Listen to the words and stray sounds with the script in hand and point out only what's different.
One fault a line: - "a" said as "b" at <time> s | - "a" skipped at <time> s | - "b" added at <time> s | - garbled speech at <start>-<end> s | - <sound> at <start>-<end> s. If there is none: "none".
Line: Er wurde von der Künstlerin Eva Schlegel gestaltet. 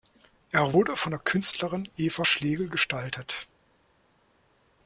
none